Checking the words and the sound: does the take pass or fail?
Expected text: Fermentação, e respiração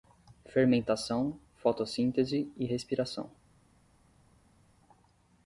fail